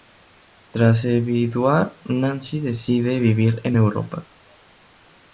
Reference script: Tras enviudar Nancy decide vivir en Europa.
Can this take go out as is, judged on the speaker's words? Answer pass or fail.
pass